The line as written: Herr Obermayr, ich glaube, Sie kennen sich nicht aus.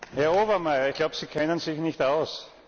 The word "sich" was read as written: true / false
true